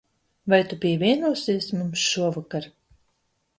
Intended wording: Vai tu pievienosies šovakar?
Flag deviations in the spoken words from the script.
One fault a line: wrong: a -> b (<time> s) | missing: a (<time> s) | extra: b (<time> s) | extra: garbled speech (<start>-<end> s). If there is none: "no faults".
extra: mums (1.8 s)